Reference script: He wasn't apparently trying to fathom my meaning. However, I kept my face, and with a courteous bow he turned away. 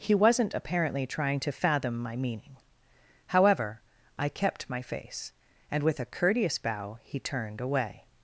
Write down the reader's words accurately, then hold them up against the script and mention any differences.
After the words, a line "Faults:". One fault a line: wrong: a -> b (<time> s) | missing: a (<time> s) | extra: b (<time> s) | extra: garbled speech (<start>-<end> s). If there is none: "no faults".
He wasn't apparently trying to fathom my meaning. However, I kept my face, and with a courteous bow he turned away.
Faults:
no faults